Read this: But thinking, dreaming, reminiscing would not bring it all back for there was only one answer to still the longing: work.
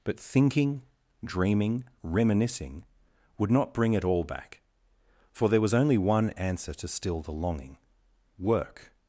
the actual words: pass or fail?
pass